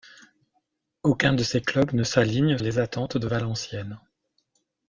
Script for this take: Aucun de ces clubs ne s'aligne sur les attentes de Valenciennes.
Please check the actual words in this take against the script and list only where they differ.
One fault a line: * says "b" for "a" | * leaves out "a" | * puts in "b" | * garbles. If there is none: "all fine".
* leaves out "sur"